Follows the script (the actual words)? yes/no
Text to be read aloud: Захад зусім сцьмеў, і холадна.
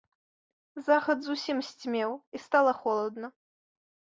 no